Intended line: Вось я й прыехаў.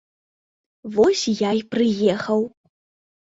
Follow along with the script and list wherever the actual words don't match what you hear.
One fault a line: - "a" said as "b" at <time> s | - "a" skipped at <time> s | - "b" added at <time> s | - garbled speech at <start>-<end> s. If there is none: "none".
none